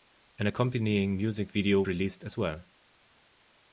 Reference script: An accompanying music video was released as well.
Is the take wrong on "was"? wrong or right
wrong